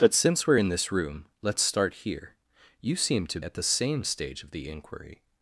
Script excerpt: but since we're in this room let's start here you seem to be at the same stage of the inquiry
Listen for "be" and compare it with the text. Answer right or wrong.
wrong